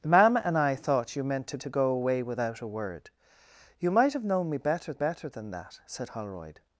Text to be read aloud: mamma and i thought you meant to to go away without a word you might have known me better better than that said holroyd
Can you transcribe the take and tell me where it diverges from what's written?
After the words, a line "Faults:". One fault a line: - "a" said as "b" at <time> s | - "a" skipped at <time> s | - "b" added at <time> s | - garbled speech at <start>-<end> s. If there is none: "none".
mamma and i thought you meant to to go away without a word you might have known me better better than that said holroyd
Faults:
none